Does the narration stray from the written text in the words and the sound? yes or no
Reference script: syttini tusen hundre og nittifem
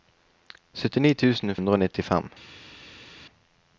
no